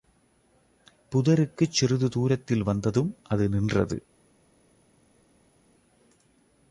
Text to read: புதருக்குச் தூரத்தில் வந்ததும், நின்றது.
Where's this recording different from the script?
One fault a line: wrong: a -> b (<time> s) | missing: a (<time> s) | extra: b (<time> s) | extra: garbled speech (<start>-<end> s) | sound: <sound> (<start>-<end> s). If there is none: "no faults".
extra: சிறிது (1.7 s)
extra: அது (3.3 s)